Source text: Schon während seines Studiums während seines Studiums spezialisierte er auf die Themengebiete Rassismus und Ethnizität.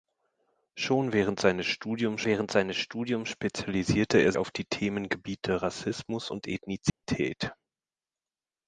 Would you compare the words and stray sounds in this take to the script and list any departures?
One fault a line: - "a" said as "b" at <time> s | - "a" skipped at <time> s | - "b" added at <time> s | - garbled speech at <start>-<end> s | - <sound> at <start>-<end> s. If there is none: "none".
- dropout at 6.9-7.0 s